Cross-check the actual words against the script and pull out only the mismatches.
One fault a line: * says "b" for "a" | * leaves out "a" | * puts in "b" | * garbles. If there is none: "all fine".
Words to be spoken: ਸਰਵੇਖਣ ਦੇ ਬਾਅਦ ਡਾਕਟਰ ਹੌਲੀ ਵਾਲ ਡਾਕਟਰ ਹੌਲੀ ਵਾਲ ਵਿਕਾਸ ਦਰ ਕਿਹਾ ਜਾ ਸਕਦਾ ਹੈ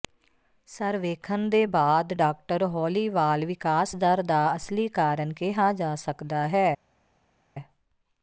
* says "ਵਿਕਾਸ ਦਰ ਦਾ ਅਸਲੀ ਕਾਰਨ" for "ਡਾਕਟਰ ਹੌਲੀ ਵਾਲ ਵਿਕਾਸ ਦਰ"